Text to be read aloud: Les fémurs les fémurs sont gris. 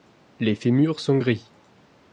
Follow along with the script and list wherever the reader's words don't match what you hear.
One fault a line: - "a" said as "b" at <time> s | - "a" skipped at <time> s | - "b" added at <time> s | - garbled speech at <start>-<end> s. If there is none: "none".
- "les fémurs" skipped at 1.0 s